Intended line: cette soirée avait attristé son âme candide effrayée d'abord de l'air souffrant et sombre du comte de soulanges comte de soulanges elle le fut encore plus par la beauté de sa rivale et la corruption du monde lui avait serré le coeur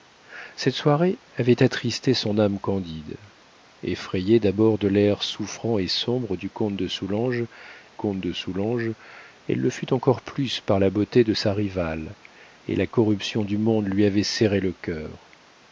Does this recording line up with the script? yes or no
yes